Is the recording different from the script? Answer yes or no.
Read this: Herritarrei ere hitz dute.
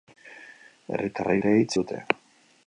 no